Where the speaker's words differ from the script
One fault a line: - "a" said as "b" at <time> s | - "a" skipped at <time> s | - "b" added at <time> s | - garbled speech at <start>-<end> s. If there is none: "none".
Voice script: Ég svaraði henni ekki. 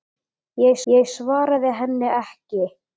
- "ég" added at 0.9 s